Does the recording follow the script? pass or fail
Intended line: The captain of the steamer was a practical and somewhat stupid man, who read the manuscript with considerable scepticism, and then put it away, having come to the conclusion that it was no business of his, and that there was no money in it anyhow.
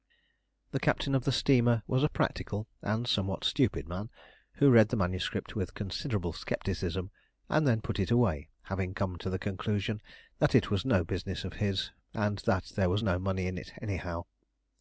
pass